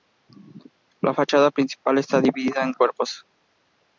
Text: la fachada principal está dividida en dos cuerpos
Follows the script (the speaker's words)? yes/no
no